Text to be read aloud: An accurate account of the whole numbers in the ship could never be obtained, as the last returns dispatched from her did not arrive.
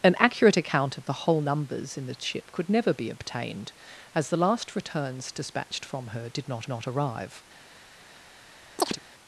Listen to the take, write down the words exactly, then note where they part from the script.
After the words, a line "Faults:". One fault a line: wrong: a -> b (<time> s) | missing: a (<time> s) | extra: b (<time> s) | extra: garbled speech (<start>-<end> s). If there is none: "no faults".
An accurate account of the whole numbers in the ship could never be obtained, as the last returns dispatched from her did not not arrive.
Faults:
extra: not (6.7 s)